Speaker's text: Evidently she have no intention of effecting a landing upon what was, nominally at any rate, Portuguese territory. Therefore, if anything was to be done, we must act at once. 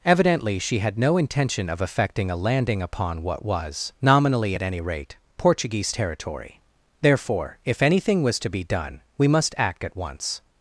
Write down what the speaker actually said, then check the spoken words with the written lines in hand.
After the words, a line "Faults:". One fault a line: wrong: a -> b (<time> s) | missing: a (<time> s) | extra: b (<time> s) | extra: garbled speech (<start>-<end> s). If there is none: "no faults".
Evidently she had no intention of effecting a landing upon what was, nominally at any rate, Portuguese territory. Therefore, if anything was to be done, we must act at once.
Faults:
wrong: have -> had (0.8 s)